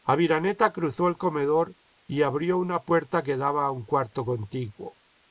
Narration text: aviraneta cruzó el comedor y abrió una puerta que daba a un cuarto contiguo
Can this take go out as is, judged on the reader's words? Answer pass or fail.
pass